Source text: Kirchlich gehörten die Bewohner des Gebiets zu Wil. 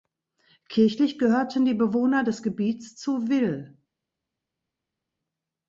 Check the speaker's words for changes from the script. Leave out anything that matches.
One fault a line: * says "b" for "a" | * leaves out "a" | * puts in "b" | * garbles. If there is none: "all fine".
all fine